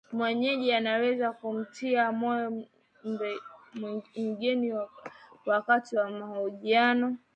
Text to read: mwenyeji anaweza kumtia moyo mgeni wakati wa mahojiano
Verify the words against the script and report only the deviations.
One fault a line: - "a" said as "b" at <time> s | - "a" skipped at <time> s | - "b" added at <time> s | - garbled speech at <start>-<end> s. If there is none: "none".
none